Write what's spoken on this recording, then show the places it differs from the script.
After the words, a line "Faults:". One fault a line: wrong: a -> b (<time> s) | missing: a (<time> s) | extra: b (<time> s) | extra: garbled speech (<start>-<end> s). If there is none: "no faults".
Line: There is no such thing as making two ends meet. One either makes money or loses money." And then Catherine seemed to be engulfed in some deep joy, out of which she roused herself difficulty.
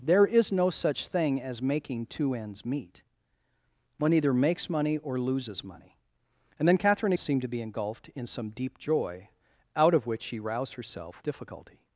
There is no such thing as making two ends meet. One either makes money or loses money." And then Catherine seemed to be engulfed in some deep joy, out of which she roused herself difficulty.
Faults:
no faults